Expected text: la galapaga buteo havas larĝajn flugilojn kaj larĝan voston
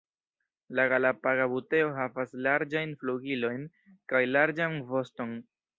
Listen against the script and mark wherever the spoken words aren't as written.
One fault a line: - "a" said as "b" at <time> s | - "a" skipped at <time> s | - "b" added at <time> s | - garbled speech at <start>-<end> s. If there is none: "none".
none